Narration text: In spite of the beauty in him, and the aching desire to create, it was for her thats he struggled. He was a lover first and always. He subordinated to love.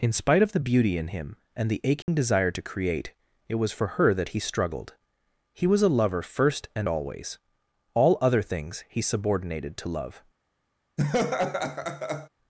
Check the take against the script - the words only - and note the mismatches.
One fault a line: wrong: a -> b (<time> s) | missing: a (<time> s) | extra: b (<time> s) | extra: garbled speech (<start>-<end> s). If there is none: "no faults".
wrong: thats -> that (4.1 s)
extra: All other things (7.9 s)